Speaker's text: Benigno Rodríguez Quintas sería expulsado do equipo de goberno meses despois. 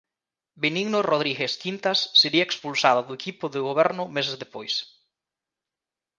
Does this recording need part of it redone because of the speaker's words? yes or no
no